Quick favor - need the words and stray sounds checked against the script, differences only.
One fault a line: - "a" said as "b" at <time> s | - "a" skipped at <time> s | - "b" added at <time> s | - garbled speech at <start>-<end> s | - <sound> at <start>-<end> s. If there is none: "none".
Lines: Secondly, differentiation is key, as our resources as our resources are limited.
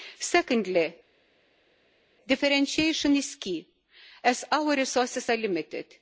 - "as our resources" skipped at 5.3 s